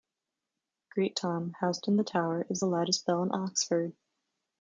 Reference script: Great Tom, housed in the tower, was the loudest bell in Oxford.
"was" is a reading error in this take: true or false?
true